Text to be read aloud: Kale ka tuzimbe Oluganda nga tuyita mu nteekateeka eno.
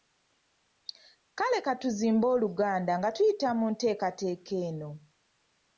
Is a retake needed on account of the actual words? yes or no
no